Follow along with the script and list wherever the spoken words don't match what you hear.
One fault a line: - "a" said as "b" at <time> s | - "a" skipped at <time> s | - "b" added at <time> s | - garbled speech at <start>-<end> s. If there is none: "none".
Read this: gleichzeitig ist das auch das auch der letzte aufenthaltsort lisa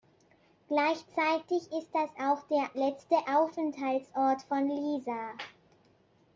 - "das auch" skipped at 2.4 s
- "von" added at 4.4 s